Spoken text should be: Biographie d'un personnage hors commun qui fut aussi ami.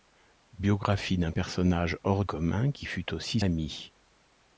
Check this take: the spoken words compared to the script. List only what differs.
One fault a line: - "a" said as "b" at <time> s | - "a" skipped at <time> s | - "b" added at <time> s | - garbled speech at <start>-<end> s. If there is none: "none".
none